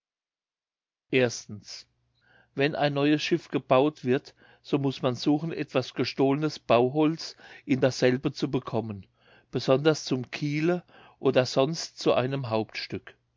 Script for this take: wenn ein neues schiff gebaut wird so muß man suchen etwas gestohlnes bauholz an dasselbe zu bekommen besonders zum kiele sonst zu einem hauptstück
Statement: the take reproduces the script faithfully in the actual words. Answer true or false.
false